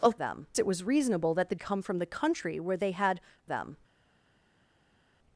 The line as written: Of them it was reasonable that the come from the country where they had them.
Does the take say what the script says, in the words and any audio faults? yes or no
yes